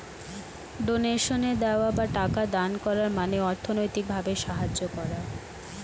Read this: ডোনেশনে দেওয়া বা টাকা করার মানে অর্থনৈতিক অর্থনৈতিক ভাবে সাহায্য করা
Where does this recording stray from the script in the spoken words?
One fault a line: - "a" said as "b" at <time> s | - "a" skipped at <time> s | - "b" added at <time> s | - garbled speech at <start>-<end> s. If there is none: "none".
- "দান" added at 2.5 s
- "অর্থনৈতিক" skipped at 4.0 s